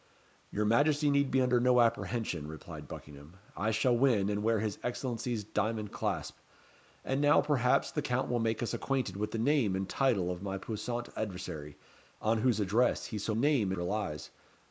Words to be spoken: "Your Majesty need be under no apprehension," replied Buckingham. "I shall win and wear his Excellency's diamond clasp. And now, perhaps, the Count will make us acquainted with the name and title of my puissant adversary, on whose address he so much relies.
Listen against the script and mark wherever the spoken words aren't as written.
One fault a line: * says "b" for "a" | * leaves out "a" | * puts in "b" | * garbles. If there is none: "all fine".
* says "name" for "much"